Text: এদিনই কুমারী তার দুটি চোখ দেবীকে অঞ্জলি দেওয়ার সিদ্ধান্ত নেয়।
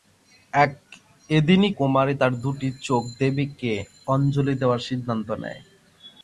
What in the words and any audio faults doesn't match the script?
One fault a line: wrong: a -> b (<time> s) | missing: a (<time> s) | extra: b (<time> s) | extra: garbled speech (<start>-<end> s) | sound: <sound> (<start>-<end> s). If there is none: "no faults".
no faults